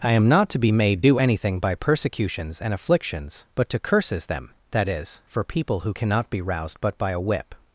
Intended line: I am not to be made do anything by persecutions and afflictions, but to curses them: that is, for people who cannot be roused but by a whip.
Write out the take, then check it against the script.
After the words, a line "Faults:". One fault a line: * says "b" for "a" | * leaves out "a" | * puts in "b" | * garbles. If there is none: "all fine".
I am not to be made do anything by persecutions and afflictions, but to curses them: that is, for people who cannot be roused but by a whip.
Faults:
all fine